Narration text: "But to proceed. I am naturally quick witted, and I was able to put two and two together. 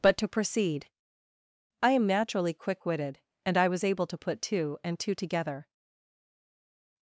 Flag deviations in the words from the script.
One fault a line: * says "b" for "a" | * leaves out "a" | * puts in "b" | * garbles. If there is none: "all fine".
all fine